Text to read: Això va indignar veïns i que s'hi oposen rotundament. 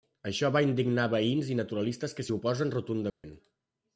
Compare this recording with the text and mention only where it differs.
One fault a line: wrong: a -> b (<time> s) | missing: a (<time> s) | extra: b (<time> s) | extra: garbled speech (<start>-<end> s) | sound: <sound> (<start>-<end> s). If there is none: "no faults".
extra: naturalistes (1.6 s)
sound: dropout (3.1-3.2 s)